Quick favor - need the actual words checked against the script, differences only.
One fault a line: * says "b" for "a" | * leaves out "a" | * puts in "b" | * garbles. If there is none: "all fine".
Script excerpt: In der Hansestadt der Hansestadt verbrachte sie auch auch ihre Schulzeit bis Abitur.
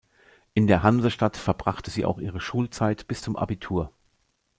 * leaves out "der Hansestadt"
* leaves out "auch"
* puts in "zum"